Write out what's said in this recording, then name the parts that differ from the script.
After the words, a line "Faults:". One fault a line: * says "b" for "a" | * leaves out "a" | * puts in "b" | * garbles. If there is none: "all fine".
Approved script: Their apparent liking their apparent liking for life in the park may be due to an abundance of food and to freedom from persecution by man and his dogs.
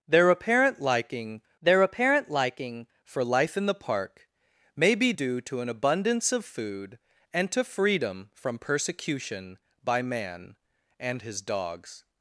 Their apparent liking their apparent liking for life in the park may be due to an abundance of food and to freedom from persecution by man and his dogs.
Faults:
all fine